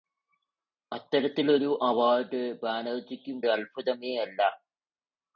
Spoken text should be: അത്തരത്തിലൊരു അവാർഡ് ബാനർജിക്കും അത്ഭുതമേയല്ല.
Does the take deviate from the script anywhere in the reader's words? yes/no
no